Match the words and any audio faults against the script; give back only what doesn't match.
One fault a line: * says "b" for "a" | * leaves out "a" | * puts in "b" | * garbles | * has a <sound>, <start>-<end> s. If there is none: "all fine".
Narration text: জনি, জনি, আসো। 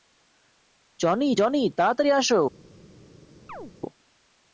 * puts in "তাড়াতাড়ি"
* has a chirp, 3.5-3.7 s